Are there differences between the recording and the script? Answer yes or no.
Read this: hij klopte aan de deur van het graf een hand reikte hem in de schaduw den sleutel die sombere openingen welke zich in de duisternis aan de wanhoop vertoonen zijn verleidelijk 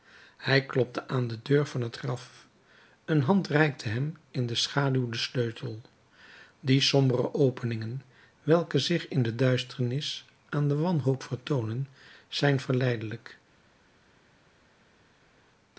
no